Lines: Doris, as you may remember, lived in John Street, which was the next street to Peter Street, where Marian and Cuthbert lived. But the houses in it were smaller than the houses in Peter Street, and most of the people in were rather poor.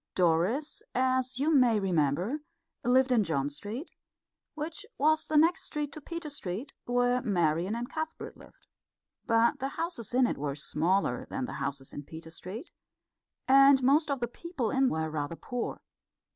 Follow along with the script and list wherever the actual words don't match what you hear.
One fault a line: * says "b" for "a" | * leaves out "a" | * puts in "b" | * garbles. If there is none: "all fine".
all fine